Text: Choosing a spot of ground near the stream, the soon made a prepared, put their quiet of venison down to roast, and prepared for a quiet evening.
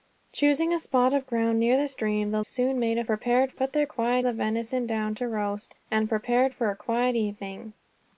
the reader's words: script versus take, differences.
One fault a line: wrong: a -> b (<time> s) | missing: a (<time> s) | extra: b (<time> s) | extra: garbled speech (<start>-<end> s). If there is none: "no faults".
no faults